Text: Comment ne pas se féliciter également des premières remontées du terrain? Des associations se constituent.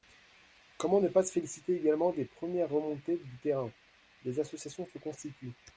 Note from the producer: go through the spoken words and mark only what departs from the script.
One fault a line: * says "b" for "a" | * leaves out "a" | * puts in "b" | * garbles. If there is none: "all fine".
all fine